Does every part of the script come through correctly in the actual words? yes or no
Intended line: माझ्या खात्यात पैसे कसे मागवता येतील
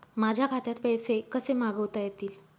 yes